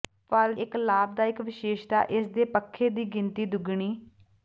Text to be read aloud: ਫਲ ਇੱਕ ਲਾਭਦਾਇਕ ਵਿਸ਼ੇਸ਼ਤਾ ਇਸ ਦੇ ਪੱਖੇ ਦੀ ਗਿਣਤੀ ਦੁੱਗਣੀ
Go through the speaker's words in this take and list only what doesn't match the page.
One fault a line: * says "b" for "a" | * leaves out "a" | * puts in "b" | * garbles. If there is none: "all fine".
all fine